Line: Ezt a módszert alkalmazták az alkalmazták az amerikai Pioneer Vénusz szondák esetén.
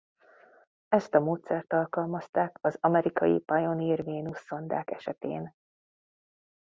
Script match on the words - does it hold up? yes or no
no